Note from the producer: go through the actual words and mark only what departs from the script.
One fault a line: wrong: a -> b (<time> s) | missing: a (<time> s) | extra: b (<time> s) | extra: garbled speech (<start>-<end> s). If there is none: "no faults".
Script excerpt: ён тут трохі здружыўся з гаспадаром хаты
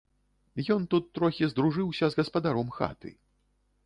no faults